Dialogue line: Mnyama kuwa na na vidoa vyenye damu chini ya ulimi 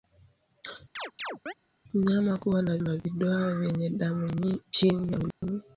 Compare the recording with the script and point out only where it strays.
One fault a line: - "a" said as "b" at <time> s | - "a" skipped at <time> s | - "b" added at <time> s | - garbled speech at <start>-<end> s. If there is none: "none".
none